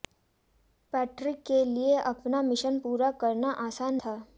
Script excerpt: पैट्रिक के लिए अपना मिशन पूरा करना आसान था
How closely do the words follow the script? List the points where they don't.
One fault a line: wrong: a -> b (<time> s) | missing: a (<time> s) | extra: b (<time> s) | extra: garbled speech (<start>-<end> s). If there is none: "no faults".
no faults